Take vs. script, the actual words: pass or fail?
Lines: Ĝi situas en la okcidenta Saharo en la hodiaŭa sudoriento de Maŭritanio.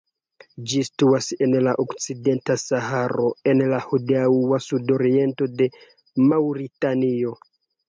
pass